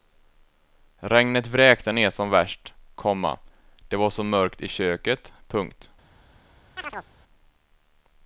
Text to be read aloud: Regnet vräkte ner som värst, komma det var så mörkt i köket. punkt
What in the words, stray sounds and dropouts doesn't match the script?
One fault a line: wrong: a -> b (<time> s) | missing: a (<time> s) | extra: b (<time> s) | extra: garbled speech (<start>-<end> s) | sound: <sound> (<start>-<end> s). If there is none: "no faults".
sound: chirp (6.8-7.1 s)